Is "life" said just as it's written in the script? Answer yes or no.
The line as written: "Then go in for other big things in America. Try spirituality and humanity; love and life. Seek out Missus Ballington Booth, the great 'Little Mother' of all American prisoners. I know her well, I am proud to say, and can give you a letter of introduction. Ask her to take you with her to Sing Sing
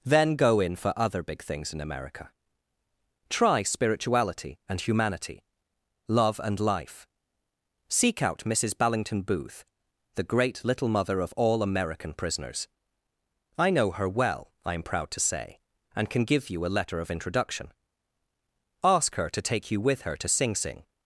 yes